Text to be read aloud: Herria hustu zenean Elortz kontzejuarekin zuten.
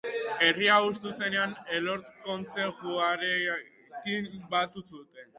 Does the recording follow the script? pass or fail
fail